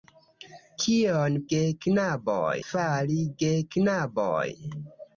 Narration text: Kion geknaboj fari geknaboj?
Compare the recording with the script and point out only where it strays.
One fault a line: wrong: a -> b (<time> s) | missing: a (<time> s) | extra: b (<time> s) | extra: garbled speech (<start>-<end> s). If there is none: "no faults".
no faults